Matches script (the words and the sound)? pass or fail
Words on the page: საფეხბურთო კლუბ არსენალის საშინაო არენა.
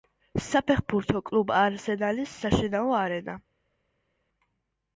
pass